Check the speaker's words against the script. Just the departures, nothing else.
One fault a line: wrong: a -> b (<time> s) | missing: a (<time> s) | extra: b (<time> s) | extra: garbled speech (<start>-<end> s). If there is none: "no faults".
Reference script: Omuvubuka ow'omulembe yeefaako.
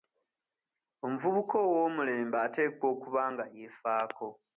extra: ateekwa okuba nga (2.5 s)